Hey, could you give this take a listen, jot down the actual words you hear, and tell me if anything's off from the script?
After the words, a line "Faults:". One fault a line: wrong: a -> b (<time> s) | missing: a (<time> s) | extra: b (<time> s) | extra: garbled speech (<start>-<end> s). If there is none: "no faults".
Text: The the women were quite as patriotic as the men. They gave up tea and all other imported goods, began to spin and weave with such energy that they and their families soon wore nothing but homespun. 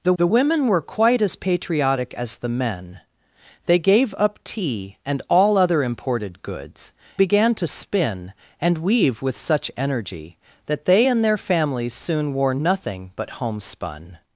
The the women were quite as patriotic as the men. They gave up tea and all other imported goods, began to spin and weave with such energy that they and their families soon wore nothing but homespun.
Faults:
no faults